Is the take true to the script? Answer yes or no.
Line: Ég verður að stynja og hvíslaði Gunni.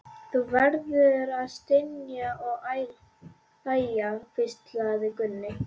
no